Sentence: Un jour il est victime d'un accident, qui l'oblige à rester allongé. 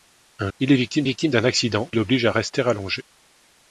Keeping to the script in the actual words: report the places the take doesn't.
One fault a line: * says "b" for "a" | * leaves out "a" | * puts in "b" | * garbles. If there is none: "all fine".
* leaves out "jour"
* puts in "victime"
* leaves out "qui"